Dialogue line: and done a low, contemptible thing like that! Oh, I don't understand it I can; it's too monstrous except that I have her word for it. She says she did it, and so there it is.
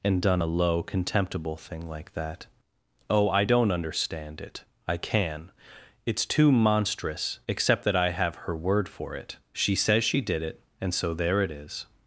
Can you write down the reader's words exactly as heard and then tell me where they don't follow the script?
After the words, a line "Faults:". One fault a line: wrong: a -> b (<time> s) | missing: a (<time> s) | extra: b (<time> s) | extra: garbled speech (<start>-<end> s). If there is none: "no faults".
and done a low, contemptible thing like that! Oh, I don't understand it I can; it's too monstrous except that I have her word for it. She says she did it, and so there it is.
Faults:
no faults